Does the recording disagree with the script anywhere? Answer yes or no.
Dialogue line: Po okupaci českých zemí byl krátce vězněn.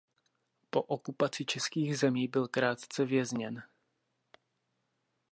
no